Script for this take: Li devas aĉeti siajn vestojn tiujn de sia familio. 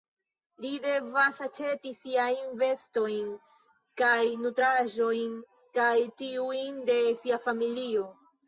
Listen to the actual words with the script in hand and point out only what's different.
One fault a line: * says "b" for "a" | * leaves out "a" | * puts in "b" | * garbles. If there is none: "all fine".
* puts in "kaj nutraĵojn kaj"